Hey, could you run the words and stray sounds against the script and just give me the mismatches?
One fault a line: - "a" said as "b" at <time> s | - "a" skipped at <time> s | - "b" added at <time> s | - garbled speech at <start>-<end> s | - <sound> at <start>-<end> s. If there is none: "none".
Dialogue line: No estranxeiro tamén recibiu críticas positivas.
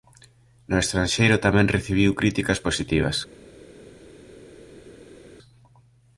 none